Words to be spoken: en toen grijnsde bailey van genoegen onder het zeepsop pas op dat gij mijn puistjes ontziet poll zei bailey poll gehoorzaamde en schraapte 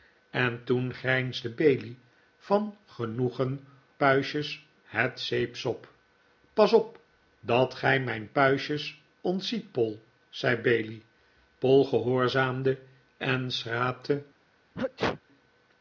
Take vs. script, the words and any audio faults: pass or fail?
fail